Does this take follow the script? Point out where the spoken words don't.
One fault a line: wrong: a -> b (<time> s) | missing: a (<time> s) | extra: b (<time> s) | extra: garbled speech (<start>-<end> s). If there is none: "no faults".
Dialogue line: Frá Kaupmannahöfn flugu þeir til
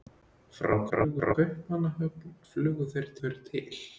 extra: garbled speech (0.9-1.4 s)
extra: þeir (3.2 s)